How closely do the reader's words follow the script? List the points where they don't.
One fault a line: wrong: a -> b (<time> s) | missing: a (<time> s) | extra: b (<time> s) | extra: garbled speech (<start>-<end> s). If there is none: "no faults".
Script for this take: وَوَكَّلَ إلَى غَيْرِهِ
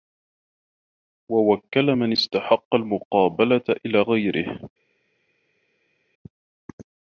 extra: مَنْ اسْتَحَقَّ الْمُقَابَلَةَ (1.9 s)